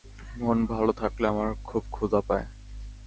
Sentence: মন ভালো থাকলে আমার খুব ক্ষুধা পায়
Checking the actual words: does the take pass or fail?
pass